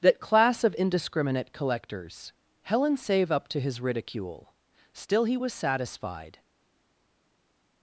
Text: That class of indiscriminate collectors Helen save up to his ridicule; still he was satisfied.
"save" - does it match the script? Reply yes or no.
yes